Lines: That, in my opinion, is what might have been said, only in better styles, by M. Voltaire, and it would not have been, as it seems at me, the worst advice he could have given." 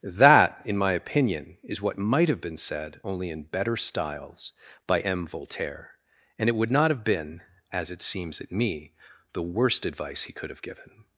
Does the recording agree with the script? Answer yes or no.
yes